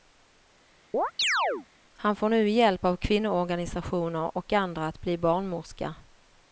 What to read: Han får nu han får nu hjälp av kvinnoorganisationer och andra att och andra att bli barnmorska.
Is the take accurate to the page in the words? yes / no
no